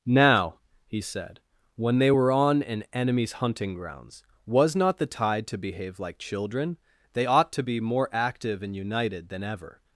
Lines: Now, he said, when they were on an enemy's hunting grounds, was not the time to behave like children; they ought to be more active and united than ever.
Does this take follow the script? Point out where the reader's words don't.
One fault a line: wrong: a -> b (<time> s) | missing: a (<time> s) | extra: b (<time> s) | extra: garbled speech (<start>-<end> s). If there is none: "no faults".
wrong: time -> tide (5.1 s)